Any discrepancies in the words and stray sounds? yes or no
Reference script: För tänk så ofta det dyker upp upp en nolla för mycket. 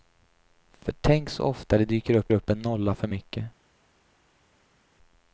no